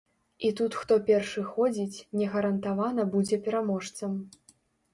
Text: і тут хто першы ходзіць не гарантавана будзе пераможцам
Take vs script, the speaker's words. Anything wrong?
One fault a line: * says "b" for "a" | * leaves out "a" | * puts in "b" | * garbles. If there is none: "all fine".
all fine